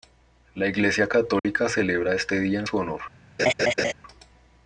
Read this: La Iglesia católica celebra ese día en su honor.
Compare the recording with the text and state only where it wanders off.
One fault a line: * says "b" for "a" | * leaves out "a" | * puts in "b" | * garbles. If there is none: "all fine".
* says "este" for "ese"